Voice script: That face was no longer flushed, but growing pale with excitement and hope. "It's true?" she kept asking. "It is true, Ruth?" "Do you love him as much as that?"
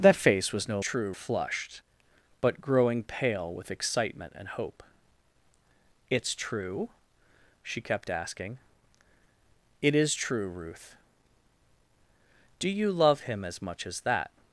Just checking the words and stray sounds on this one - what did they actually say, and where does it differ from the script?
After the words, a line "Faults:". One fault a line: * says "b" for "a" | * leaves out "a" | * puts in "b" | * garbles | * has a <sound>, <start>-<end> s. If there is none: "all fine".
That face was no true flushed, but growing pale with excitement and hope. "It's true?" she kept asking. "It is true, Ruth?" "Do you love him as much as that?"
Faults:
* says "true" for "longer"